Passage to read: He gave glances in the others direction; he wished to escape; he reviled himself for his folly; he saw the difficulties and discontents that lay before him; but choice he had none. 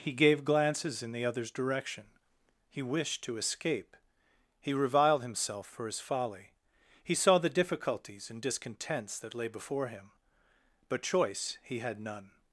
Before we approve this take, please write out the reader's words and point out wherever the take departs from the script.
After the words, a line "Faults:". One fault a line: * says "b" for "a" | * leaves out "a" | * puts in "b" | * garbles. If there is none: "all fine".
He gave glances in the others direction; he wished to escape; he reviled himself for his folly; he saw the difficulties and discontents that lay before him; but choice he had none.
Faults:
all fine